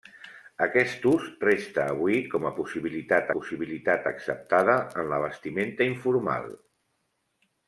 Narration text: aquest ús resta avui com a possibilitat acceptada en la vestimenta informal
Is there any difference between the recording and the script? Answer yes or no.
yes